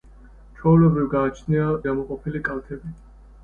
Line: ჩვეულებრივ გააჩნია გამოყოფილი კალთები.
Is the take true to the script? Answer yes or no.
yes